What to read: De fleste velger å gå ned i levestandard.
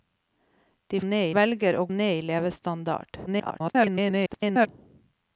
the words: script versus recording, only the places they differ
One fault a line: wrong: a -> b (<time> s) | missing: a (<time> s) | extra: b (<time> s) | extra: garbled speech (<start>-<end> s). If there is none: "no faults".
wrong: fleste -> ned (1.0 s)
missing: gå (1.8 s)
extra: garbled speech (3.3-4.7 s)